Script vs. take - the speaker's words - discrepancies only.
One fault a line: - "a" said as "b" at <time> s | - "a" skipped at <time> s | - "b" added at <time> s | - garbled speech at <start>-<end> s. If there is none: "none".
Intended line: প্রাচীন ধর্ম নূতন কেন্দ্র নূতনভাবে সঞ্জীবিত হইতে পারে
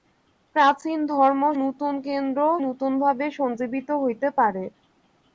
none